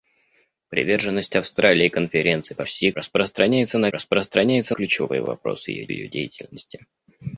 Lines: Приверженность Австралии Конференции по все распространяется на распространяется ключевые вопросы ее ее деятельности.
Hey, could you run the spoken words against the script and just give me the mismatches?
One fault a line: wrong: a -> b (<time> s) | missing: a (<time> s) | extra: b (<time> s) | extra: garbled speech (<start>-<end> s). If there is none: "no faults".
no faults